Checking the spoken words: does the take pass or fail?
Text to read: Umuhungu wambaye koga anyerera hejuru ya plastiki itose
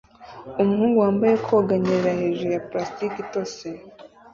pass